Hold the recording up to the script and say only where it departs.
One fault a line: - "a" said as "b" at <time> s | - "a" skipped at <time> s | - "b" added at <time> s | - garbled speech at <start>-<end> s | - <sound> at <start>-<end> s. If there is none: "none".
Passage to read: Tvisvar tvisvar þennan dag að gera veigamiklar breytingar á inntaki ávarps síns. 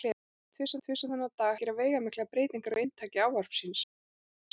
none